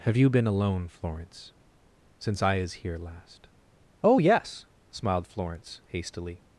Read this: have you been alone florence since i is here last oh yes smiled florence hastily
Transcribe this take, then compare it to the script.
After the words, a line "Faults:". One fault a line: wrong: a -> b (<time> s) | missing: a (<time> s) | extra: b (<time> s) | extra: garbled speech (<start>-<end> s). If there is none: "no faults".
have you been alone florence since i is here last oh yes smiled florence hastily
Faults:
no faults